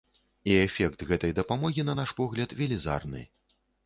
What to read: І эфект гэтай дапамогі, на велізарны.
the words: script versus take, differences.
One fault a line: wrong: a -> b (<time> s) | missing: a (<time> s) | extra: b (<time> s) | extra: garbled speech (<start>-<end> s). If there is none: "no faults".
extra: наш погляд (2.0 s)